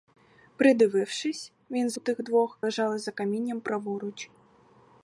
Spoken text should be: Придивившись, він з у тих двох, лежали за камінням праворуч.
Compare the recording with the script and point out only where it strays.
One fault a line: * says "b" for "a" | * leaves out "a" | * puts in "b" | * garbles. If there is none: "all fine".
all fine